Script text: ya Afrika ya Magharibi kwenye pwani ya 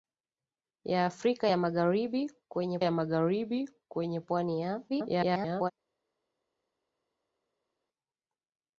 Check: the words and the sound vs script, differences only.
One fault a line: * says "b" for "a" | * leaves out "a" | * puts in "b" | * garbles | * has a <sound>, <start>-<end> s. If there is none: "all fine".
* puts in "ya Magharibi kwenye"
* garbles